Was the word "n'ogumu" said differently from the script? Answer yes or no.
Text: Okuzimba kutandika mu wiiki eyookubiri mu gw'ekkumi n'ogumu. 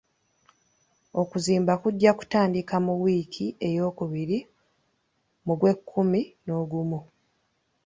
no